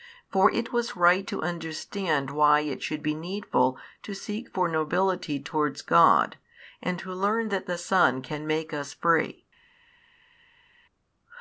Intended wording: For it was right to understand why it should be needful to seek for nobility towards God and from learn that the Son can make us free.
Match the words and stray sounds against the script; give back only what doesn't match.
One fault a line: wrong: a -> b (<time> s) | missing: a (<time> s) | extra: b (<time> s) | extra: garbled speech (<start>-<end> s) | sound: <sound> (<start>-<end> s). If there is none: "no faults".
wrong: from -> to (7.0 s)